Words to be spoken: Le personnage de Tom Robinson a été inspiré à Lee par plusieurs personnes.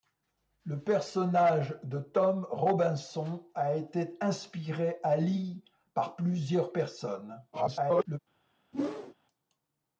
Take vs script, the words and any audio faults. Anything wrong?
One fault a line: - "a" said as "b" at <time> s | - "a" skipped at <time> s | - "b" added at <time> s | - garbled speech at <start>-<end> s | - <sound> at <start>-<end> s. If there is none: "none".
- garbled speech at 7.5-8.2 s
- whoosh at 8.7-9.1 s